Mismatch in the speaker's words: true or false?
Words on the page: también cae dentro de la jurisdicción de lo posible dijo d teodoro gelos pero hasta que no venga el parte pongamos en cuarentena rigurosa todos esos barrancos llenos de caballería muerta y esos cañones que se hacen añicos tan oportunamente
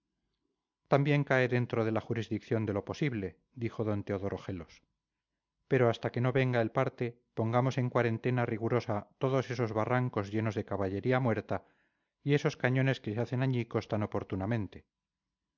false